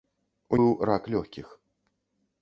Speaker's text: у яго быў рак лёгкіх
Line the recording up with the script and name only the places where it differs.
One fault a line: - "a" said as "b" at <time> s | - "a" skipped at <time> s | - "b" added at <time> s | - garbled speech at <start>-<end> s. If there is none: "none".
- "яго" skipped at 0.6 s